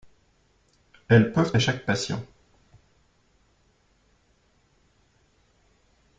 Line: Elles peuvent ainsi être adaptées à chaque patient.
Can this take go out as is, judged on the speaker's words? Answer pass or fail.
fail